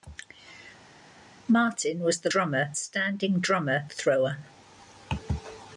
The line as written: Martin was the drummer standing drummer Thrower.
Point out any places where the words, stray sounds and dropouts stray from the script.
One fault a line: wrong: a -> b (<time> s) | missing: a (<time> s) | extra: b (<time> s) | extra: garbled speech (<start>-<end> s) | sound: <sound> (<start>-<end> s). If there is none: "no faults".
no faults